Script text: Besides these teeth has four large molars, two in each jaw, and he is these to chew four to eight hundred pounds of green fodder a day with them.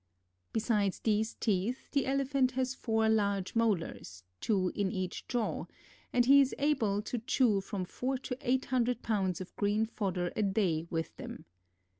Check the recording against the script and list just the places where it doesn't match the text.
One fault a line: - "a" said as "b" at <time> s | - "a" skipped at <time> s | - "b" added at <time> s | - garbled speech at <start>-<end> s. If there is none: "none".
- "the Elephant" added at 1.9 s
- "these" said as "able" at 6.6 s
- "from" added at 7.6 s